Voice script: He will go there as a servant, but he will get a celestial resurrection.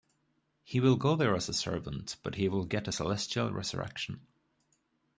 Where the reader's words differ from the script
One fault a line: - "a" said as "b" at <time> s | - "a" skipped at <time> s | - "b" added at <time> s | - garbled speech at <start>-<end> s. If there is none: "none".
none